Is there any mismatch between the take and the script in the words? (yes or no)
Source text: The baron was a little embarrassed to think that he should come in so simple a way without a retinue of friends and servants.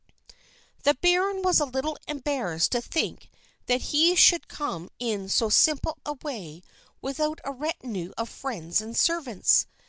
no